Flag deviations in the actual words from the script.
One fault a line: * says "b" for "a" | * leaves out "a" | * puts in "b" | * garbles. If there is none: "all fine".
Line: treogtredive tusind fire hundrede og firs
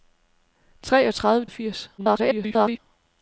* leaves out "tusind fire hundrede"
* garbles